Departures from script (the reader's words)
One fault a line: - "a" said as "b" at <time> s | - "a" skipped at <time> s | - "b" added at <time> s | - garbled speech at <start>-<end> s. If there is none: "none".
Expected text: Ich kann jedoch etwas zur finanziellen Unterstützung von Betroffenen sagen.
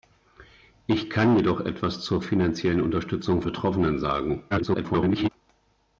- "von" skipped at 3.4 s
- garbled speech at 4.5-5.3 s